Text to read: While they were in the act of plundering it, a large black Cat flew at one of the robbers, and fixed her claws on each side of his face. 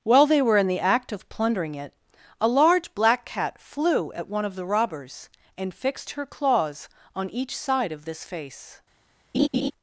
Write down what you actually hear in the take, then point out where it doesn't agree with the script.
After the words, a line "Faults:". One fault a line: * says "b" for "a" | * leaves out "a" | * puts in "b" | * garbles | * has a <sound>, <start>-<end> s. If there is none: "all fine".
While they were in the act of plundering it, a large black Cat flew at one of the robbers, and fixed her claws on each side of this face.
Faults:
* says "this" for "his"
* has a laugh, 9.3-9.7 s